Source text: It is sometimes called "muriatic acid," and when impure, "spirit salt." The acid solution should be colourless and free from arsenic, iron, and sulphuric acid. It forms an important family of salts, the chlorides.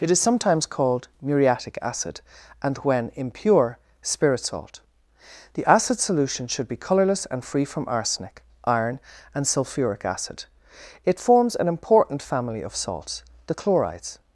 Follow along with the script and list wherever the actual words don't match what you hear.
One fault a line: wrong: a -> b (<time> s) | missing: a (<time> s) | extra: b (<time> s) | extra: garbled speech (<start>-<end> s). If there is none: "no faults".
no faults